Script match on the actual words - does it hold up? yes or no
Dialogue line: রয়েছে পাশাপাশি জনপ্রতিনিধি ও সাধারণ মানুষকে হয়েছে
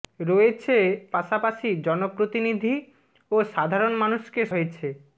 yes